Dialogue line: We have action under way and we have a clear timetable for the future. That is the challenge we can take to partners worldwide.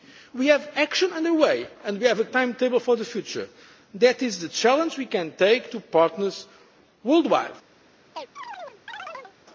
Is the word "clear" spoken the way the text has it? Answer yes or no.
no